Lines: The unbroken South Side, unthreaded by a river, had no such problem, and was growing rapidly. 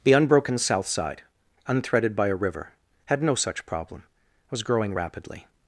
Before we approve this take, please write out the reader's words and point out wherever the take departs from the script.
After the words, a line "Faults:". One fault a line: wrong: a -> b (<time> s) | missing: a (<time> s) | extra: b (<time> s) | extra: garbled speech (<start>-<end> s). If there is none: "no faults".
The unbroken South Side, unthreaded by a river, had no such problem, was growing rapidly.
Faults:
missing: and (4.0 s)